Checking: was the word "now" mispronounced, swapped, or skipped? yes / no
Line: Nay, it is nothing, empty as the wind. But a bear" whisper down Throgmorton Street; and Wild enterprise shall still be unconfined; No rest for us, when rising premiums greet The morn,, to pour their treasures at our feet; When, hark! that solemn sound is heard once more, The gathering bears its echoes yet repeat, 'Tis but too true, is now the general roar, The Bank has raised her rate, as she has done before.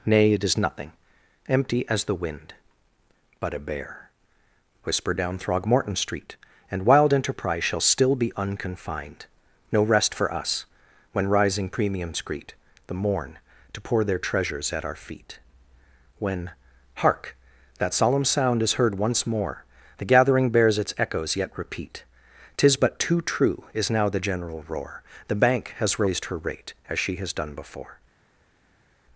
no